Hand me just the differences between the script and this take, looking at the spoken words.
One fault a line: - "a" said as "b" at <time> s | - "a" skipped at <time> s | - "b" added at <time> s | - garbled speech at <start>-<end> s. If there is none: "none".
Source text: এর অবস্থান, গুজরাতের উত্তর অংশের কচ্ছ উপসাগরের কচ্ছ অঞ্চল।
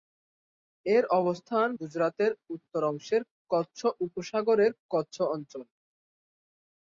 none